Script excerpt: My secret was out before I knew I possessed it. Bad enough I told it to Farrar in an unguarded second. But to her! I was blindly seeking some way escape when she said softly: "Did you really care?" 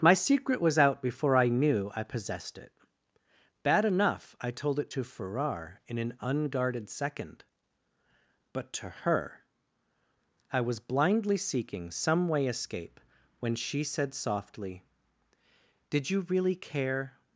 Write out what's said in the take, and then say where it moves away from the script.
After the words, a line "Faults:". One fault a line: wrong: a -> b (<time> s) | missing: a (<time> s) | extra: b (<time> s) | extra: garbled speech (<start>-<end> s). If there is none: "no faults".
My secret was out before I knew I possessed it. Bad enough I told it to Farrar in an unguarded second. But to her! I was blindly seeking some way escape when she said softly: "Did you really care?"
Faults:
no faults